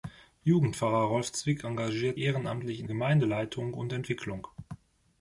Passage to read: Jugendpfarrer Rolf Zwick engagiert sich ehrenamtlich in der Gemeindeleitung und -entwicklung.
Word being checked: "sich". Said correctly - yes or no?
no